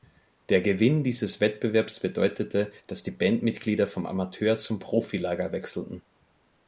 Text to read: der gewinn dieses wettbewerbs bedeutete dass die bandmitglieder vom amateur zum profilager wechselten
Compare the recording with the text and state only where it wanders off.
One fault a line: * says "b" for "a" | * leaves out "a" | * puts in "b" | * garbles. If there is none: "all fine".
all fine